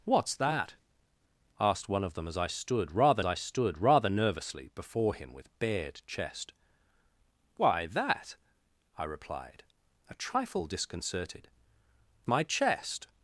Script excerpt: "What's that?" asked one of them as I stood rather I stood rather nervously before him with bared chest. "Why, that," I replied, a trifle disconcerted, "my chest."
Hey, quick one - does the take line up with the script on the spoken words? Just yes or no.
yes